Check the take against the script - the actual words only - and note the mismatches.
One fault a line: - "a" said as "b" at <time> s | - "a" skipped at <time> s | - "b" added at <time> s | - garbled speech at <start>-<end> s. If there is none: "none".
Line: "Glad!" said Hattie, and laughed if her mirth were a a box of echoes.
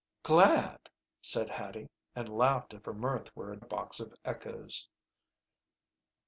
none